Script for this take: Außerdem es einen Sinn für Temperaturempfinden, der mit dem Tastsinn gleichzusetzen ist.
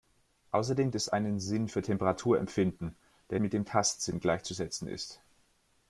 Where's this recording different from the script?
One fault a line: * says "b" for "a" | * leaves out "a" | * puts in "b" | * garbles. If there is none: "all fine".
all fine